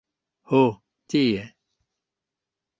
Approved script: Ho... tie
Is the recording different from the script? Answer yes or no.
no